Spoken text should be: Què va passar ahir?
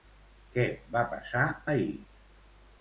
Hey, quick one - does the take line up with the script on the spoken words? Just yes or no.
yes